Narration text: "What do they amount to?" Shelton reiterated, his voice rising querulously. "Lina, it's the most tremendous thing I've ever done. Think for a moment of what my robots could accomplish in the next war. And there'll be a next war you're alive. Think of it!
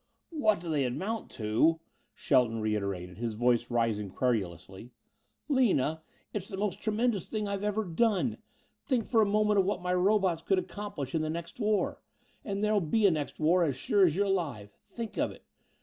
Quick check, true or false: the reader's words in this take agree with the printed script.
false